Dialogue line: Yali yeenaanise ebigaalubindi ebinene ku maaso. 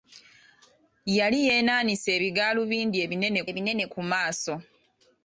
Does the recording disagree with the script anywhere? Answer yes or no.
yes